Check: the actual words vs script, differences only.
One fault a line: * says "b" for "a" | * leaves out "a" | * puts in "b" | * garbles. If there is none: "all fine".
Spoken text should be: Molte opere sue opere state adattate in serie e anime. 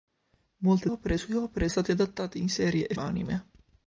all fine